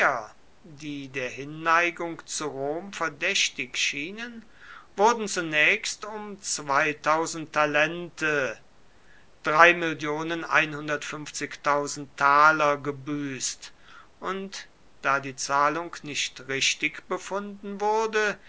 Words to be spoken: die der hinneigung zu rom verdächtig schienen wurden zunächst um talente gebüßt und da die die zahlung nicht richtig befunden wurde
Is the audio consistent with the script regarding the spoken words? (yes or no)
no